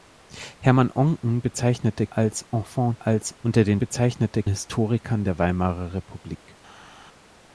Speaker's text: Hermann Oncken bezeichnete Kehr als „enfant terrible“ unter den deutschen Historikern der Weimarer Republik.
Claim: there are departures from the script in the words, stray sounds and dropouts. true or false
true